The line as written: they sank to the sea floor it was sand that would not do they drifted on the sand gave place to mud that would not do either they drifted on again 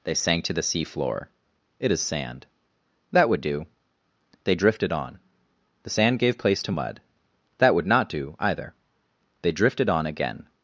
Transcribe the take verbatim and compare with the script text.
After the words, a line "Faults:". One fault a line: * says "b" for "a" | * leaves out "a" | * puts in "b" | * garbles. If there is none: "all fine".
they sank to the sea floor it is sand that would do they drifted on the sand gave place to mud that would not do either they drifted on again
Faults:
* says "is" for "was"
* leaves out "not"